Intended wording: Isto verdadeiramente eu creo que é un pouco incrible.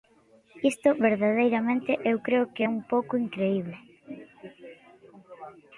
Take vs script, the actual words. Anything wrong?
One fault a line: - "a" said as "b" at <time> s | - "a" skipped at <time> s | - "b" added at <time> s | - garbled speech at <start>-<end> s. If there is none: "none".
none